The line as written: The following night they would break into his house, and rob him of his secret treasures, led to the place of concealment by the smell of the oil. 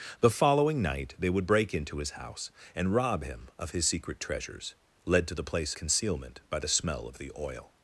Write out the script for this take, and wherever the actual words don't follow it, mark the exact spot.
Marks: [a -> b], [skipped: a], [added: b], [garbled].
The following night they would break into his house, and rob him of his secret treasures, led to the place [skipped: of] concealment by the smell of the oil.